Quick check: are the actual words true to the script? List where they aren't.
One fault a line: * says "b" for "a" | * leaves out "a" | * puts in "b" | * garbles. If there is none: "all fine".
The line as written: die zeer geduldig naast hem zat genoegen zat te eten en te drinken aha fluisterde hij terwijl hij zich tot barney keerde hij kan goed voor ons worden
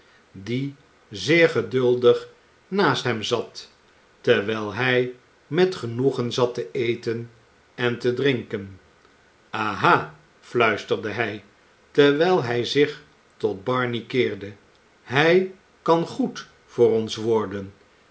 * puts in "terwijl hij met"